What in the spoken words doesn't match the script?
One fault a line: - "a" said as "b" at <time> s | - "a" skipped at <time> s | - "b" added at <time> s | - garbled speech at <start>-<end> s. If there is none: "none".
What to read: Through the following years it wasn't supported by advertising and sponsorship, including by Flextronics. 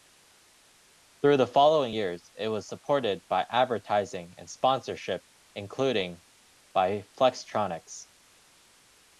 - "wasn't" said as "was" at 2.5 s